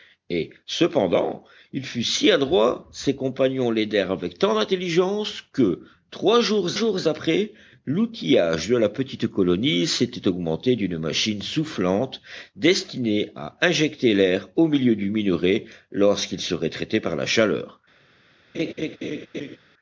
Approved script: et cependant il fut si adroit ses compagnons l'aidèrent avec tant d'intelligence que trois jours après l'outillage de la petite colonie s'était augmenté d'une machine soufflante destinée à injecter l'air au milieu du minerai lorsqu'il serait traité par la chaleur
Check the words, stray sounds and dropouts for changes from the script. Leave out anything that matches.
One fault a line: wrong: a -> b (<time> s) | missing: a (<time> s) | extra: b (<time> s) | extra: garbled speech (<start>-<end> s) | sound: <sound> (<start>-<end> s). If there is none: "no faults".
extra: jours (6.7 s)
sound: laugh (18.5-19.6 s)